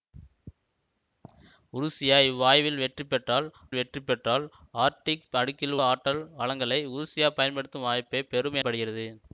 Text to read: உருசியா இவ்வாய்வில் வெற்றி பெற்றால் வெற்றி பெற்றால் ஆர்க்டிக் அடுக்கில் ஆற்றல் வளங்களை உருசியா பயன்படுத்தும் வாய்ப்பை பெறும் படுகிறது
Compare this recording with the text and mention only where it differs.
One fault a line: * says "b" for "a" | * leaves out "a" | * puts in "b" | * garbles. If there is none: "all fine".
all fine